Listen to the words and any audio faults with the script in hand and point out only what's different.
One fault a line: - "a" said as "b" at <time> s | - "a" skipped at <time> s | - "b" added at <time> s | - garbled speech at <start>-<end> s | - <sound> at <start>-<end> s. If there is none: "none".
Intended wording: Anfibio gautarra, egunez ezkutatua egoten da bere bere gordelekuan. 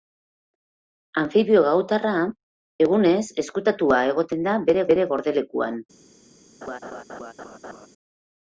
- laugh at 6.6-7.9 s